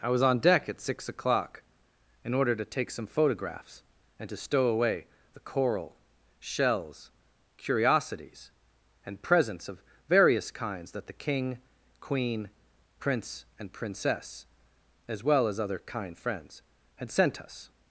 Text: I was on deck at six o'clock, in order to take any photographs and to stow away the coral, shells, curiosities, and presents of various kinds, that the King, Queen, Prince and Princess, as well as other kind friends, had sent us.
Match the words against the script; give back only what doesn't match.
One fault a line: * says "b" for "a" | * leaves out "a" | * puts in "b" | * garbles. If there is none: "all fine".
* says "some" for "any"